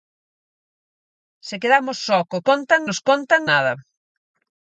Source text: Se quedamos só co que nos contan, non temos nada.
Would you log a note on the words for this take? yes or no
yes